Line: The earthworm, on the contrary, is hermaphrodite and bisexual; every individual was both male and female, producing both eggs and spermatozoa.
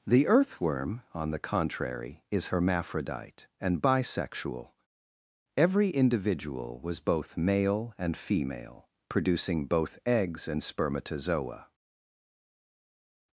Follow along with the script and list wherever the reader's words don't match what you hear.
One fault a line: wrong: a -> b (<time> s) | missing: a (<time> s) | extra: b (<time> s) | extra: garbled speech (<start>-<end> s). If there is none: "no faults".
no faults